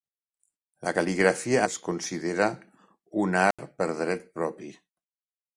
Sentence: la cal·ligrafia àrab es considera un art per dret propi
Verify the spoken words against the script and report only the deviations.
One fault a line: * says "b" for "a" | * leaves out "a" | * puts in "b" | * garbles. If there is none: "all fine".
* leaves out "àrab"